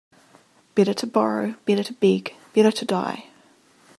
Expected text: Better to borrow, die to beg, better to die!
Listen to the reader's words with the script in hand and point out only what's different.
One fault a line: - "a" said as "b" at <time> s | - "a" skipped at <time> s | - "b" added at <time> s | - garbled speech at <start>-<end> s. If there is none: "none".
- "die" said as "better" at 1.6 s